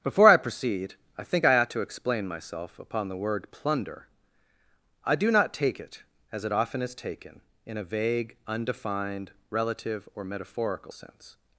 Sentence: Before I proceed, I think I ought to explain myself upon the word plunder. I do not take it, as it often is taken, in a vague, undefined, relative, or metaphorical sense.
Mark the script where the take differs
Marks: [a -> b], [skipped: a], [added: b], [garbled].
Before I proceed, I think I ought to explain myself upon the word plunder. I do not take it, as it often is taken, in a vague, undefined, relative, or metaphorical sense.